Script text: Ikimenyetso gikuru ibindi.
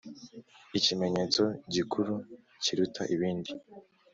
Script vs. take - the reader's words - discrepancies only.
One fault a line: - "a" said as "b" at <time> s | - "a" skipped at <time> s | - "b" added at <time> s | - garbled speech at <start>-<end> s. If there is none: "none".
- "kiruta" added at 2.6 s